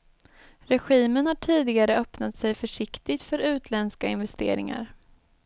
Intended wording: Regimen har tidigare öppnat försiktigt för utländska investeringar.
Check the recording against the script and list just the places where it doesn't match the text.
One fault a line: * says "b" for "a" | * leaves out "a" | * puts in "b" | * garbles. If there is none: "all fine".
* puts in "sig"